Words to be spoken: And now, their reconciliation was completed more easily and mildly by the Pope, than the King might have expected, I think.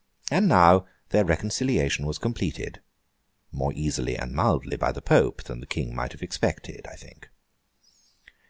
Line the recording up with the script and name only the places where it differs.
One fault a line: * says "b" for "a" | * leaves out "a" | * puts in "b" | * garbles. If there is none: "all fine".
all fine